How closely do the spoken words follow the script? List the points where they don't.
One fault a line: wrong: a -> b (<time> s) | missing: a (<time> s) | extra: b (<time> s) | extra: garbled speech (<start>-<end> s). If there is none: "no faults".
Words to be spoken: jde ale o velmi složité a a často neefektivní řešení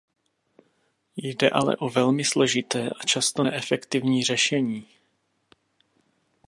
missing: a (3.0 s)